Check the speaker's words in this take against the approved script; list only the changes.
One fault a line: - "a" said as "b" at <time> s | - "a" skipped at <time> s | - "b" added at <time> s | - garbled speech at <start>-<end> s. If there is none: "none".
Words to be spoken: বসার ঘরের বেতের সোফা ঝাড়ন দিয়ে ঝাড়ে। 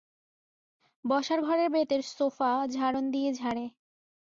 none